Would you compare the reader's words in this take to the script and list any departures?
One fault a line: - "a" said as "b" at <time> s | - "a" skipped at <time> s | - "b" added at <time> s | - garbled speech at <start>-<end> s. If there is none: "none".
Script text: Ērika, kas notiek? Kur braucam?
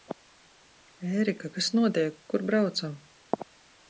none